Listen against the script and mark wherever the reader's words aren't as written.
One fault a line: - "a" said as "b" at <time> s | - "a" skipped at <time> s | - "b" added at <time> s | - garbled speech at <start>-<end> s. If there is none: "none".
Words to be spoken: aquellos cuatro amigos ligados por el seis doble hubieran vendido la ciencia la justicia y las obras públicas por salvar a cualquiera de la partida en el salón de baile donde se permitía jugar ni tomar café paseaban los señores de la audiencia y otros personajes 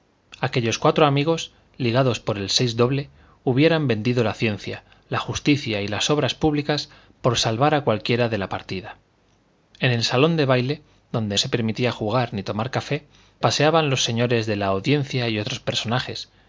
none